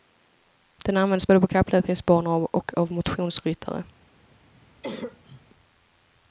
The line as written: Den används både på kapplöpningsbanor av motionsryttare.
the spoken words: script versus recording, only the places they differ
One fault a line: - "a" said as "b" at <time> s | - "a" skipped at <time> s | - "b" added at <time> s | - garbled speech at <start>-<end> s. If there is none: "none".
- "och" added at 2.5 s